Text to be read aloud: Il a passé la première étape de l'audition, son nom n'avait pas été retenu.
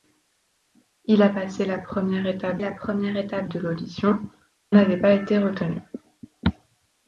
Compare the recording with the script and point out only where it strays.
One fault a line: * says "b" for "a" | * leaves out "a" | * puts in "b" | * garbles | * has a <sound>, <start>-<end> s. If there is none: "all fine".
* puts in "la première étape"
* leaves out "son nom"